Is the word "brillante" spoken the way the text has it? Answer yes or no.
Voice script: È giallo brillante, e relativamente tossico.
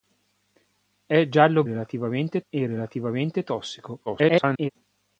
no